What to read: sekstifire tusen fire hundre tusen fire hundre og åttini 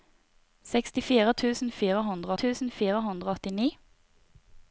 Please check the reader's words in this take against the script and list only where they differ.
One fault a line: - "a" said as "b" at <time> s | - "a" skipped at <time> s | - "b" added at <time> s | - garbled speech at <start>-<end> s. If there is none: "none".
none